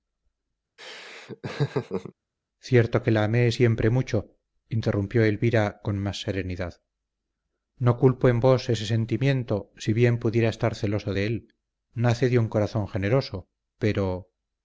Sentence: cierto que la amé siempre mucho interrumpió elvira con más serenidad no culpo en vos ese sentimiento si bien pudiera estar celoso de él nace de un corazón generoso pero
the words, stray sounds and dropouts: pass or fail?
fail